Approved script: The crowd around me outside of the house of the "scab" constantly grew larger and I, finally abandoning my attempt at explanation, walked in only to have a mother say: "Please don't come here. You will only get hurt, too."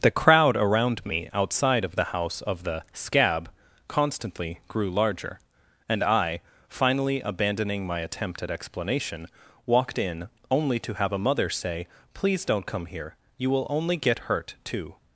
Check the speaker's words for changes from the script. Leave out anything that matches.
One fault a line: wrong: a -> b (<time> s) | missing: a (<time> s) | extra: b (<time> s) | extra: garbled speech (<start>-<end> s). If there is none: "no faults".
no faults